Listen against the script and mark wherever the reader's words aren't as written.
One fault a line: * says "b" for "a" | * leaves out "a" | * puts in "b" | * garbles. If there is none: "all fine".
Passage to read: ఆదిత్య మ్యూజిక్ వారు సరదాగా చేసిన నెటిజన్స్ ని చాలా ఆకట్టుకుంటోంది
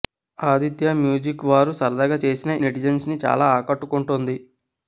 all fine